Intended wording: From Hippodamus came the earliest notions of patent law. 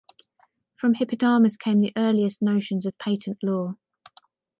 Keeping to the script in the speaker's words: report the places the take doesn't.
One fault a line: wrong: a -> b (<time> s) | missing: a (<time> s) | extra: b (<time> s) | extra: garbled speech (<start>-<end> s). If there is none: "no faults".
no faults